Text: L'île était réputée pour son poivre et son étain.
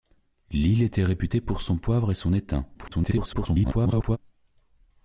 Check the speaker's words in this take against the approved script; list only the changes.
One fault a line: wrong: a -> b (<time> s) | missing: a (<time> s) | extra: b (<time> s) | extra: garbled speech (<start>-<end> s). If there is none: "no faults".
extra: garbled speech (2.7-4.2 s)